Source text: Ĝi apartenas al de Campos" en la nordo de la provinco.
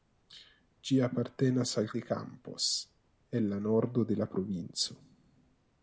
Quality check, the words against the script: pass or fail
pass